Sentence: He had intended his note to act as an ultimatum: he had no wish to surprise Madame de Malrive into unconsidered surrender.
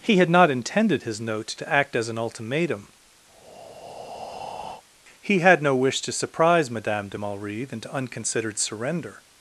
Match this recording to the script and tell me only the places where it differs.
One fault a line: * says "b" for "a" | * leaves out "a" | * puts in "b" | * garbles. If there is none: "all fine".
* puts in "not"